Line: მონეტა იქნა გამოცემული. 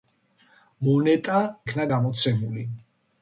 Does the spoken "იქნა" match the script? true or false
true